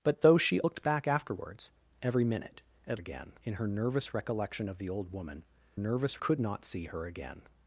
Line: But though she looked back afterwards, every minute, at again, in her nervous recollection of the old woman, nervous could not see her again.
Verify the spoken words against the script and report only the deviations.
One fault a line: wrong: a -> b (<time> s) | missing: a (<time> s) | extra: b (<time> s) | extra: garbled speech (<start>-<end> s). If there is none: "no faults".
no faults